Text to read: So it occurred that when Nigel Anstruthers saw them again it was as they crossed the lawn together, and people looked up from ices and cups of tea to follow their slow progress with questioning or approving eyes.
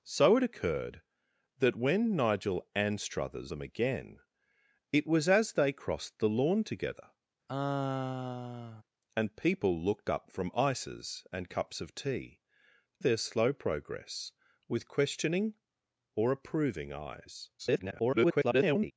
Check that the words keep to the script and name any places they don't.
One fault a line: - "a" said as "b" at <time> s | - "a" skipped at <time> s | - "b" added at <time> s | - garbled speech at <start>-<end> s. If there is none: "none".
- "saw" skipped at 3.5 s
- "to follow" skipped at 12.4 s
- garbled speech at 17.6-18.9 s